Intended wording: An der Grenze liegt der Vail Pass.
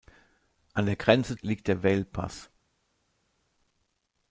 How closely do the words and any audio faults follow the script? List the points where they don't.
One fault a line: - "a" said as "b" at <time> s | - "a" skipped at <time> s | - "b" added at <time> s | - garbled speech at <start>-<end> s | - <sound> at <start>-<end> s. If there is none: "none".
none